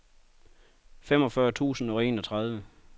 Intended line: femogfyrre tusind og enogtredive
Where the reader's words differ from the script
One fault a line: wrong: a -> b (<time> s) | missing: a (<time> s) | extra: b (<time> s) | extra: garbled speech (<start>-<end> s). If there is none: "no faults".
no faults